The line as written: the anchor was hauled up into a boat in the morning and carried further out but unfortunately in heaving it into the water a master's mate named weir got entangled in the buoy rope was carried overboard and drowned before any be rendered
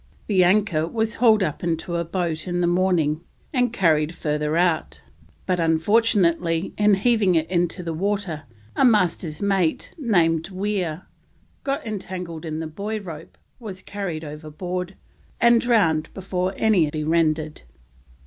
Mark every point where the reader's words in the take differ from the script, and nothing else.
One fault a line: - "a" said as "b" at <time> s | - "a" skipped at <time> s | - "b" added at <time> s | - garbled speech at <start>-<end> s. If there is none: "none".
none